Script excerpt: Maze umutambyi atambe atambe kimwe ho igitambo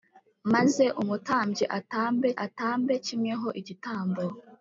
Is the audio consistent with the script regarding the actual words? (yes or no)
yes